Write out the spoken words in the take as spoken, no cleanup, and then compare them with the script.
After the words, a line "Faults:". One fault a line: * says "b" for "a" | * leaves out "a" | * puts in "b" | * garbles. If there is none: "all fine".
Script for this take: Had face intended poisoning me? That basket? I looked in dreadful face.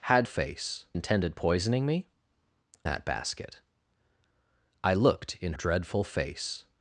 Had face intended poisoning me? That basket? I looked in dreadful face.
Faults:
all fine